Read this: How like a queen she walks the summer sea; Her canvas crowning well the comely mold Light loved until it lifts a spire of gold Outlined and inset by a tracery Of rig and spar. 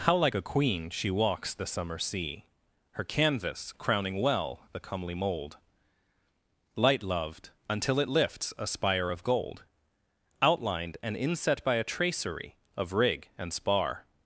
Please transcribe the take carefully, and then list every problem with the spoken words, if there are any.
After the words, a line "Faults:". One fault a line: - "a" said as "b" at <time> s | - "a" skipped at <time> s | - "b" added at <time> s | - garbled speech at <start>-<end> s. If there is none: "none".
How like a queen she walks the summer sea; Her canvas crowning well the comely mold Light loved until it lifts a spire of gold Outlined and inset by a tracery Of rig and spar.
Faults:
none